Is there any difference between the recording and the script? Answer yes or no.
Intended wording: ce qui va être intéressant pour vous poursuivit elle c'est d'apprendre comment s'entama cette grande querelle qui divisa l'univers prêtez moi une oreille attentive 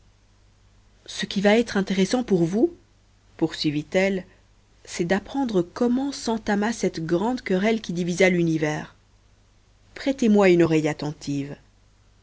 no